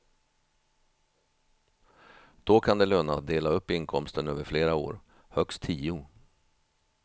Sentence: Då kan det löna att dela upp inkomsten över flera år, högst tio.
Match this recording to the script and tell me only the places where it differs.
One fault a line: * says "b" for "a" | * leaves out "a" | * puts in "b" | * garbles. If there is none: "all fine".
all fine